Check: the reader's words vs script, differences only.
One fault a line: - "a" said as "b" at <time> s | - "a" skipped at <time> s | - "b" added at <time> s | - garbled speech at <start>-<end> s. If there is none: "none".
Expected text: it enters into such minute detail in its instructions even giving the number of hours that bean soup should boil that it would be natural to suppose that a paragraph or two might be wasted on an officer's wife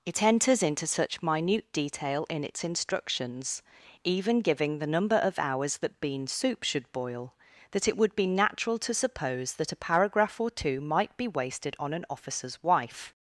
none